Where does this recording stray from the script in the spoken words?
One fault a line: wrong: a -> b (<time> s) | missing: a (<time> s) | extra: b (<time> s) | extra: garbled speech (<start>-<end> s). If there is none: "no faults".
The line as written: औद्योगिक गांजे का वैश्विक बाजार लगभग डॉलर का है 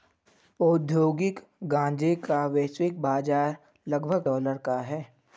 no faults